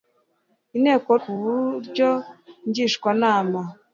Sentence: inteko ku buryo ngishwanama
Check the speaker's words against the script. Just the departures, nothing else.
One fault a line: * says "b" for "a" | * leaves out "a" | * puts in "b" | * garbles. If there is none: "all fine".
all fine